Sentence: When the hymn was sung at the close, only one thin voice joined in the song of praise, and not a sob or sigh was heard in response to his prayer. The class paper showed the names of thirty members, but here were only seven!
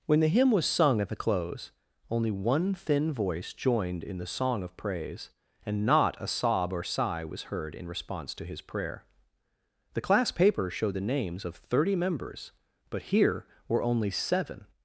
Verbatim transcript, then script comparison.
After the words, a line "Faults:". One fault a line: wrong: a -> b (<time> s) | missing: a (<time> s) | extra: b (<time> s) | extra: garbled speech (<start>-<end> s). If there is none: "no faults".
When the hymn was sung at the close, only one thin voice joined in the song of praise, and not a sob or sigh was heard in response to his prayer. The class paper showed the names of thirty members, but here were only seven!
Faults:
no faults